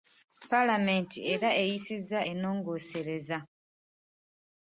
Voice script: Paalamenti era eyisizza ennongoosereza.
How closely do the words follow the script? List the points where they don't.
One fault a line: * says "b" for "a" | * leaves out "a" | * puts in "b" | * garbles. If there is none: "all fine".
all fine